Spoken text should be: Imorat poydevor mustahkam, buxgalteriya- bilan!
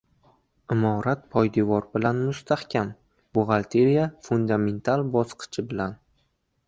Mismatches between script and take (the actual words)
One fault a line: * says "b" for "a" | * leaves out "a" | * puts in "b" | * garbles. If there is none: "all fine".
* puts in "bilan"
* puts in "fundamental bosqichi"